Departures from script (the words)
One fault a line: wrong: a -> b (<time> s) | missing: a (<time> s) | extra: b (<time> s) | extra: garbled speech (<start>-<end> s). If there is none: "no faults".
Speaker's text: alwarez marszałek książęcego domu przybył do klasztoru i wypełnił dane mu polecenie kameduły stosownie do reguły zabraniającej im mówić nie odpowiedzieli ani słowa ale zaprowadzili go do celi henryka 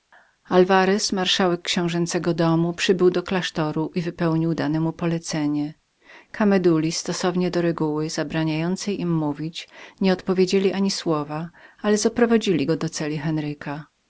no faults